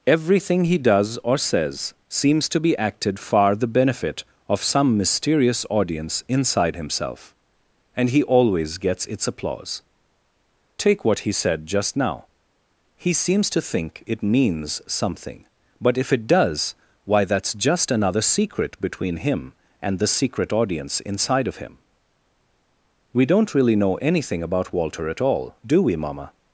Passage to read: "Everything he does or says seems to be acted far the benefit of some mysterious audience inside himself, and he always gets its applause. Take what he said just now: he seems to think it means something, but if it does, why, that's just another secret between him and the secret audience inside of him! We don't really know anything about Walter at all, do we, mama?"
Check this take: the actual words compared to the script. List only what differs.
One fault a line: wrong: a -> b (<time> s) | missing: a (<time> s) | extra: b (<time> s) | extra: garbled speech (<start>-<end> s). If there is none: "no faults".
no faults